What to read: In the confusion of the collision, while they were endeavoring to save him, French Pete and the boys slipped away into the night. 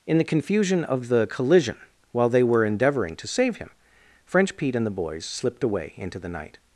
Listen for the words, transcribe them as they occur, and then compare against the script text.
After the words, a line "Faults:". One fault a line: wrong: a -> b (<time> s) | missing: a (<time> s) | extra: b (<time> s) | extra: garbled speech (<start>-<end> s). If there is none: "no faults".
In the confusion of the collision, while they were endeavoring to save him, French Pete and the boys slipped away into the night.
Faults:
no faults